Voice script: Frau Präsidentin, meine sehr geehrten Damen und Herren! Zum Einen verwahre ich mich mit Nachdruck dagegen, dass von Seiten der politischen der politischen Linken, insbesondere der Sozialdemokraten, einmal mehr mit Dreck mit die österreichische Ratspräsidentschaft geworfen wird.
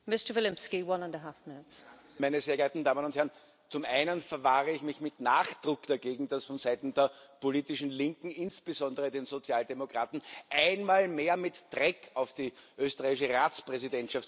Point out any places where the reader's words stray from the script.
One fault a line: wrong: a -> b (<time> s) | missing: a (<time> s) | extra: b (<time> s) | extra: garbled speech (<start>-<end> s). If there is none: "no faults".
missing: der politischen (7.9 s)
wrong: mit -> auf (12.1 s)